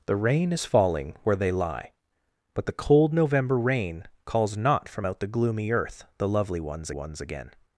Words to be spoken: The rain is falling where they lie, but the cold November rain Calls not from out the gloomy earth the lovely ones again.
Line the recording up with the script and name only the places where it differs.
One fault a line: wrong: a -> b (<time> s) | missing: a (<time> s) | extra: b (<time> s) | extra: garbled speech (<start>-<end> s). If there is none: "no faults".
extra: ones (6.9 s)